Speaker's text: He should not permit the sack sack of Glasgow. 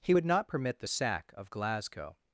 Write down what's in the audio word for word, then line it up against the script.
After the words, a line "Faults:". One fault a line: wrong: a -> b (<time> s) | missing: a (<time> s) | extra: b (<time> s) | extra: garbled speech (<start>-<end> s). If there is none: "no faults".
He would not permit the sack of Glasgow.
Faults:
wrong: should -> would (0.1 s)
missing: sack (1.3 s)